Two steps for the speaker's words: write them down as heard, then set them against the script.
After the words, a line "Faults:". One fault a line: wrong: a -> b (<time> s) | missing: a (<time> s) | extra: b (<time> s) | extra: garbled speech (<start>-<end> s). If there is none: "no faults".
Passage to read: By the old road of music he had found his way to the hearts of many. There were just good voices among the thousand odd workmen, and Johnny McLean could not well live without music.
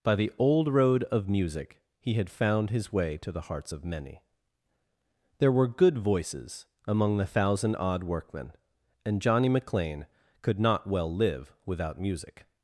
By the old road of music he had found his way to the hearts of many. There were good voices among the thousand odd workmen, and Johnny McLean could not well live without music.
Faults:
missing: just (5.7 s)